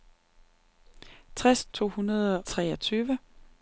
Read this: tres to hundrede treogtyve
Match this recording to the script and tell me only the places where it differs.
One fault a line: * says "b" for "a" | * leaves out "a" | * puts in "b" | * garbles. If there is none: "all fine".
all fine